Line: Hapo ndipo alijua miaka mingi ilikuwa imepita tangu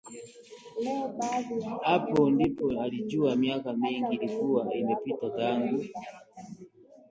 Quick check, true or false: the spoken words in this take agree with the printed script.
true